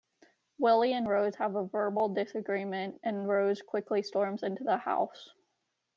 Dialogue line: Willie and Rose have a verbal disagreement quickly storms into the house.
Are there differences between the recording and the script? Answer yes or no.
yes